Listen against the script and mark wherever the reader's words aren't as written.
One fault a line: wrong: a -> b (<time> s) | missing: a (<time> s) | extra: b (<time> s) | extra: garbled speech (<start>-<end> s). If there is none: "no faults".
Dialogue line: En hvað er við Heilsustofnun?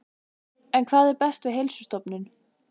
extra: best (1.2 s)